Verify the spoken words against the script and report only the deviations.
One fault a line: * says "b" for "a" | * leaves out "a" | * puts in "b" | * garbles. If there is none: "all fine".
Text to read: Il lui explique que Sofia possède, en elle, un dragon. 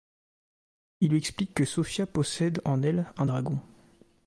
all fine